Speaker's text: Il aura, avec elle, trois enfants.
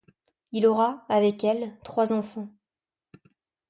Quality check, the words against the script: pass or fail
pass